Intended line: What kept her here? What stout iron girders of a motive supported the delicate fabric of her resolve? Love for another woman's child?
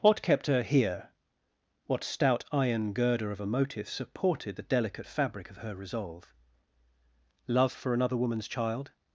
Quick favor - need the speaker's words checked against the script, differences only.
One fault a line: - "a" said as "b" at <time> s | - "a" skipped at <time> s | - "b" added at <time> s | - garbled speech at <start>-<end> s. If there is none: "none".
- "girders" said as "girder" at 2.9 s